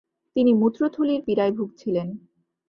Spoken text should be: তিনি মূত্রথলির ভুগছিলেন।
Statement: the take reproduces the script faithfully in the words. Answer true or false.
false